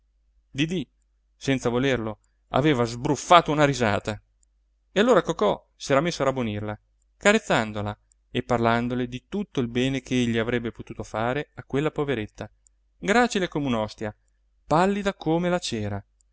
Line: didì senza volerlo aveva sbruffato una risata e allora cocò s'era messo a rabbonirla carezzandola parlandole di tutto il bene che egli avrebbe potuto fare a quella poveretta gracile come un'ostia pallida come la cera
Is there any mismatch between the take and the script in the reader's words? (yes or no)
yes